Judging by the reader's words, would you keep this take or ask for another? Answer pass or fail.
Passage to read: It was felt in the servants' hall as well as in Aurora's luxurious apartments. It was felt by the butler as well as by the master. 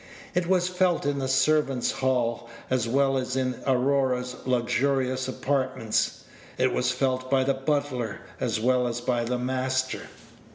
pass